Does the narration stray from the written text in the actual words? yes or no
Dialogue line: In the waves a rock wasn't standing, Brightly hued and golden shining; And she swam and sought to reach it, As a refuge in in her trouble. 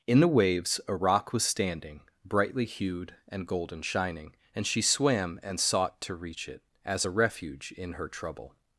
yes